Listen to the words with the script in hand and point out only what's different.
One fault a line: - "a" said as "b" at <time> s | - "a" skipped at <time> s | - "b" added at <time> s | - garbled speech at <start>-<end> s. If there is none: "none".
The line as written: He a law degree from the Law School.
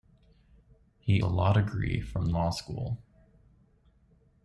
none